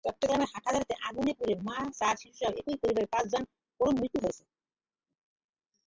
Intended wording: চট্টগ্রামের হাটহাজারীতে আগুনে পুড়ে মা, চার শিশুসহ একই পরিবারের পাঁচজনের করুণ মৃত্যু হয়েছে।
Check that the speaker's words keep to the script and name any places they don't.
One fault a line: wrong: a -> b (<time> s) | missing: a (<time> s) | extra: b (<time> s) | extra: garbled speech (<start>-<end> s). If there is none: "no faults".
no faults